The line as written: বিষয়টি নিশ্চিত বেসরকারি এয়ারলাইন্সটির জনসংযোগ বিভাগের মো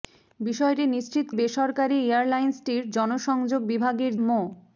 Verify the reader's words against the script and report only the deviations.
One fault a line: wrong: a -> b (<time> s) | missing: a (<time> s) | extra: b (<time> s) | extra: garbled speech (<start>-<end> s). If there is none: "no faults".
no faults